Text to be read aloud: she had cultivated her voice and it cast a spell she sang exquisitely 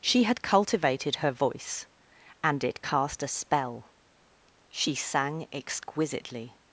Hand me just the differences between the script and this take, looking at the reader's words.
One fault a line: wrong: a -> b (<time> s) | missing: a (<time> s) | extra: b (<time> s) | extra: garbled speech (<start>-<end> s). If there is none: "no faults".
no faults